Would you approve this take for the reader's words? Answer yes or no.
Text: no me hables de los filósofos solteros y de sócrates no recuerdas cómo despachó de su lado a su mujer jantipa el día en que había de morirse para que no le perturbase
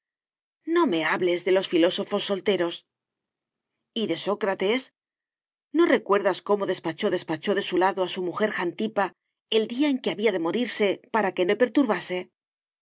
no